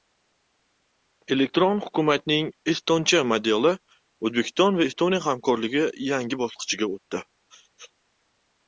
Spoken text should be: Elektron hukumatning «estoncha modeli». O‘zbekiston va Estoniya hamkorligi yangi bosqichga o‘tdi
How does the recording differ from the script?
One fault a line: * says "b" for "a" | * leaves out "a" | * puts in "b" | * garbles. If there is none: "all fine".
all fine